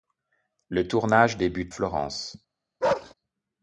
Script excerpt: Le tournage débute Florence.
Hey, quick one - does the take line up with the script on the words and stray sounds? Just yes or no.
no